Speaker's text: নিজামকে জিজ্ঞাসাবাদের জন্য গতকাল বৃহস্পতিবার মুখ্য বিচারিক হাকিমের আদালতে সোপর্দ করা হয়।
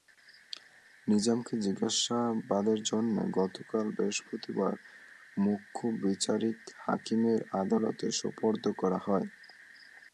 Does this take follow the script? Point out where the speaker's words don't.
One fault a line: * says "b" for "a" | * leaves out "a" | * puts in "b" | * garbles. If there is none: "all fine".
all fine